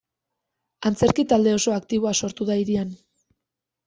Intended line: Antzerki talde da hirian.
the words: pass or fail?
fail